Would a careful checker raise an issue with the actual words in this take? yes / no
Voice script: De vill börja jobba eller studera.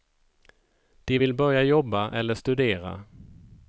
no